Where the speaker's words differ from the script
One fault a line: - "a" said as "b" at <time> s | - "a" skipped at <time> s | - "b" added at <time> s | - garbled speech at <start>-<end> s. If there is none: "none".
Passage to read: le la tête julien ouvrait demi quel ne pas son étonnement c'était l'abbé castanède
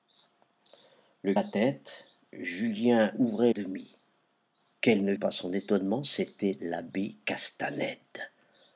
none